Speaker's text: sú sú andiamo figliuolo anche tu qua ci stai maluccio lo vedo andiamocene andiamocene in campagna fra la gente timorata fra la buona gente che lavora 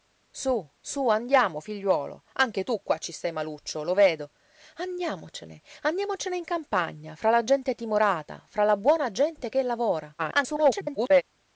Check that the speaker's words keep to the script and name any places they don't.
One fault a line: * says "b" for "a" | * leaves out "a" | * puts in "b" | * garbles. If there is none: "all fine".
* garbles